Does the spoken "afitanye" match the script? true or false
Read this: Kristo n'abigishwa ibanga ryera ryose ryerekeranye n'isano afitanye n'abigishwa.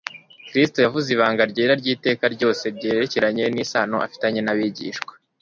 true